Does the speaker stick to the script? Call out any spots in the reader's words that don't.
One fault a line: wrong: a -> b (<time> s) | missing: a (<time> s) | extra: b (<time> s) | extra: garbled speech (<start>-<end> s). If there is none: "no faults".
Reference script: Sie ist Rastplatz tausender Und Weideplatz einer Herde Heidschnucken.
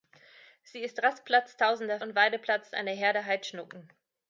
no faults